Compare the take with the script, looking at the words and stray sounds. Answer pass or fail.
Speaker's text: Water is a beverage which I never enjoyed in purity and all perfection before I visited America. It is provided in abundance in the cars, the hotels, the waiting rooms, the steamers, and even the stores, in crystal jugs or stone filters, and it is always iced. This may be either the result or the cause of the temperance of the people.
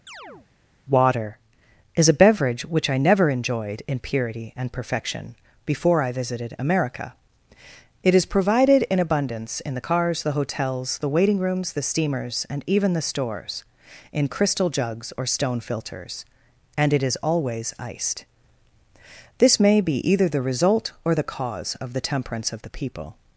fail